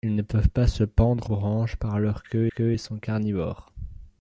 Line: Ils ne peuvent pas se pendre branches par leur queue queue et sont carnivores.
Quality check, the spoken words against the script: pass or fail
pass